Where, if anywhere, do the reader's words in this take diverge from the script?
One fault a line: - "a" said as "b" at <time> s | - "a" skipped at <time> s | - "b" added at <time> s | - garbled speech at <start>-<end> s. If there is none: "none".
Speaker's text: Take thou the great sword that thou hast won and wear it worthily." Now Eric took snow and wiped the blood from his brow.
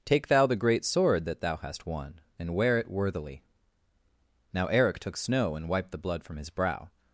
none